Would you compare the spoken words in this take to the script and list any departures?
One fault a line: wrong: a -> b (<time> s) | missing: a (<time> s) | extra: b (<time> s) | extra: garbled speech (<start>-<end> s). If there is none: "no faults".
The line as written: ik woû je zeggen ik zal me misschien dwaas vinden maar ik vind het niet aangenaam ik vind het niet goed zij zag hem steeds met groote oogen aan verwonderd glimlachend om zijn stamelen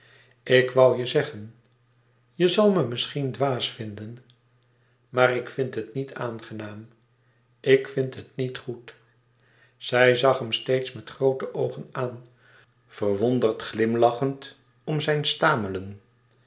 wrong: ik -> je (2.4 s)